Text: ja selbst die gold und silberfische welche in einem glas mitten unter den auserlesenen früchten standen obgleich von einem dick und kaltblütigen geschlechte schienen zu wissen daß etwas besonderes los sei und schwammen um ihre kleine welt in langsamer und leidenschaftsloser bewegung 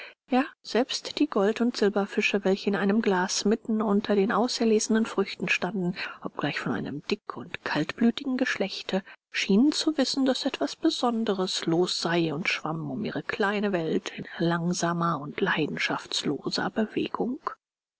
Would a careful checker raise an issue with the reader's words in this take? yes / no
no